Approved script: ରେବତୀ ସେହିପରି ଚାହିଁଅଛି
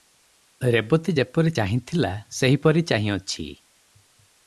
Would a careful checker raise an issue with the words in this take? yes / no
yes